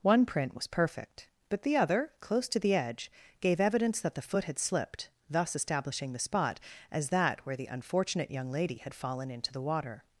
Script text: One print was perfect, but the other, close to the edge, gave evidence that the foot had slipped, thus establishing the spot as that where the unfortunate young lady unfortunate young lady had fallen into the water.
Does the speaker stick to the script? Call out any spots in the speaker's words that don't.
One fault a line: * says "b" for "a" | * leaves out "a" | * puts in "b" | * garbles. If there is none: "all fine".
* leaves out "unfortunate young lady"